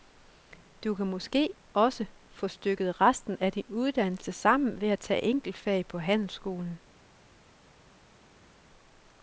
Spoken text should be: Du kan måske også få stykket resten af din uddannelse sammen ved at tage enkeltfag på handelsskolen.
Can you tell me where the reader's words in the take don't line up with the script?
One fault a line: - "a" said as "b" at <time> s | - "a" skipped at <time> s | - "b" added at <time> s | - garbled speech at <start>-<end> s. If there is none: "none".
none